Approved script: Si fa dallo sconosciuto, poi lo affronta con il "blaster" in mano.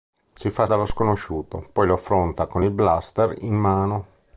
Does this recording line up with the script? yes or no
yes